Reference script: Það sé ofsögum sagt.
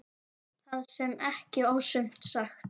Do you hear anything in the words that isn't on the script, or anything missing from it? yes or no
yes